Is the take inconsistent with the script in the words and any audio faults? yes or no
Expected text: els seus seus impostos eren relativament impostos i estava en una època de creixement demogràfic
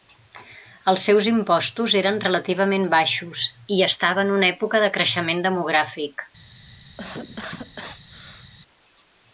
yes